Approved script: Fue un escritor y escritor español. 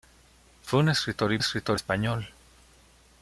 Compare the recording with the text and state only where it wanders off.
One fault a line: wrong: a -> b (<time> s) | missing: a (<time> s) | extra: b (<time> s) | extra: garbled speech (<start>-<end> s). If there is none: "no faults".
no faults